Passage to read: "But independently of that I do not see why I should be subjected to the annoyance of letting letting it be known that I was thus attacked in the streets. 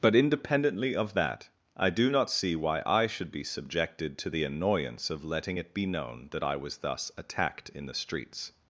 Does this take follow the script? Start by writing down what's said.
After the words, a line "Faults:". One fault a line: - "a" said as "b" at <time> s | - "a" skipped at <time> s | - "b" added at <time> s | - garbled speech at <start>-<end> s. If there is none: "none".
"But independently of that I do not see why I should be subjected to the annoyance of letting it be known that I was thus attacked in the streets.
Faults:
- "letting" skipped at 5.6 s